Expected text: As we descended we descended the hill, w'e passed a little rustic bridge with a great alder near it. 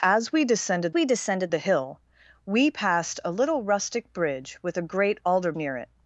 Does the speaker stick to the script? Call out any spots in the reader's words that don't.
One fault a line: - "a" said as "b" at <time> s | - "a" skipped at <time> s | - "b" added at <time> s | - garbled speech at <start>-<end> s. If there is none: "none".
none